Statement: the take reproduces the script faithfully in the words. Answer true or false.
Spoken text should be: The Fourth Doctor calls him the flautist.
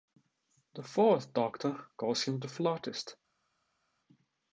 true